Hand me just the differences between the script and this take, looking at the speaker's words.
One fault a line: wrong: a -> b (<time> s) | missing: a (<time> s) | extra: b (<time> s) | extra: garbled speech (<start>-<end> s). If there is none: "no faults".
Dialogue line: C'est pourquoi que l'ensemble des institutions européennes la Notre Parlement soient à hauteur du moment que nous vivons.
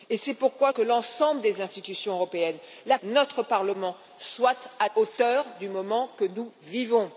no faults